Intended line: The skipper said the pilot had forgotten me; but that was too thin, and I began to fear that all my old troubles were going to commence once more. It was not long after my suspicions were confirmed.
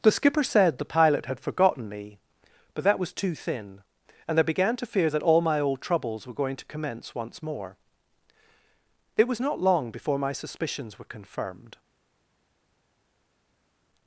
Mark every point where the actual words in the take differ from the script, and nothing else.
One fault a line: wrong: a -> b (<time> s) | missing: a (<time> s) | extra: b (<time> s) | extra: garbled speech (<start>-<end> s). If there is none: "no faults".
wrong: after -> before (9.9 s)